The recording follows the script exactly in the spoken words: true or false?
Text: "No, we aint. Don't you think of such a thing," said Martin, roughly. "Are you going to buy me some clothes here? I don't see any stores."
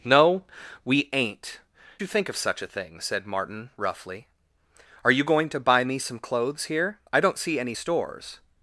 false